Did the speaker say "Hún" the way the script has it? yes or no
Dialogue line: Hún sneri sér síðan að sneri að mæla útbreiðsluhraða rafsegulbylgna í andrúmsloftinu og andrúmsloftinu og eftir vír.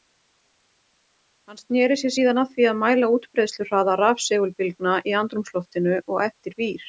no